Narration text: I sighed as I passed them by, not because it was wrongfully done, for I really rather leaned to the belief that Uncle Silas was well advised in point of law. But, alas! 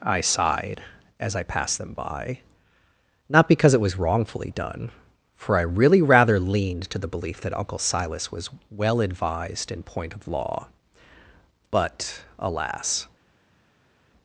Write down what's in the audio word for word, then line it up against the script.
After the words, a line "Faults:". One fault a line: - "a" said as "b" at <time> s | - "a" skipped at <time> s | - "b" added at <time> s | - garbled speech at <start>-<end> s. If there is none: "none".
I sighed as I passed them by, not because it was wrongfully done, for I really rather leaned to the belief that Uncle Silas was well advised in point of law. But, alas!
Faults:
none